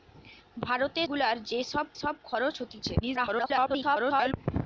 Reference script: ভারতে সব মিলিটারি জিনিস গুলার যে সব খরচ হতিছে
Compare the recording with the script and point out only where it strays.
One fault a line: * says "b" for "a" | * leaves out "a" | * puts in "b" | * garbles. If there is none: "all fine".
* leaves out "সব মিলিটারি জিনিস"
* puts in "সব"
* garbles